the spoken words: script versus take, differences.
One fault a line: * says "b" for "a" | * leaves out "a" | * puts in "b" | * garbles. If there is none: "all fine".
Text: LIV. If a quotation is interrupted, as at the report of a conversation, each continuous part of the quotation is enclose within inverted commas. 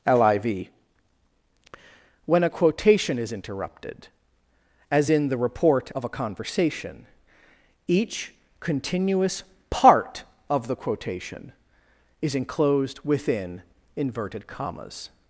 * says "When" for "If"
* says "in" for "at"
* says "enclosed" for "enclose"